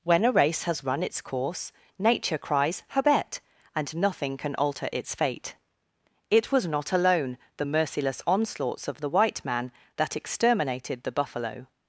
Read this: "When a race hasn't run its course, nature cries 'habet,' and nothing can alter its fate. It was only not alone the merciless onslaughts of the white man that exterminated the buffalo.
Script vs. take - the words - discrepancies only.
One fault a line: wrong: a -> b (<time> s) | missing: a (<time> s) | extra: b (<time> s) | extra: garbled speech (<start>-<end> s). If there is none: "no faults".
wrong: hasn't -> has (0.6 s)
missing: only (6.7 s)